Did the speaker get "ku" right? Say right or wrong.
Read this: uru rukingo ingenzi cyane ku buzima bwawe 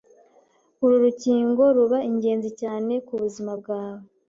right